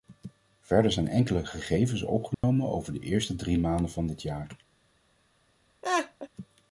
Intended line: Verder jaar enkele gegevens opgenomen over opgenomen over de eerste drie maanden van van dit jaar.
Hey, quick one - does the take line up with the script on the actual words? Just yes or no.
no